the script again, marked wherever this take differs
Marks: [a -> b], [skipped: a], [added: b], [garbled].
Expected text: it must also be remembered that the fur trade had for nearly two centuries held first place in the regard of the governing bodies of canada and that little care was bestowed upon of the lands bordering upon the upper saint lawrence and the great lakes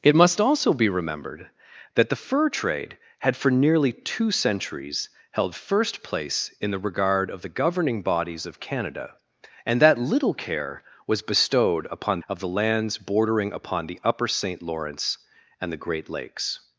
it must also be remembered that the fur trade had for nearly two centuries held first place in the regard of the governing bodies of canada and that little care was bestowed upon of the lands bordering upon the upper saint lawrence and the great lakes